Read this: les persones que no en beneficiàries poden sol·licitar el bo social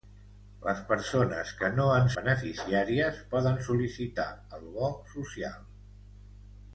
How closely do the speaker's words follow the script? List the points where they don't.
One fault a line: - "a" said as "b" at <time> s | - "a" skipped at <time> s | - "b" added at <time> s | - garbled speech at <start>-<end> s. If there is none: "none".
none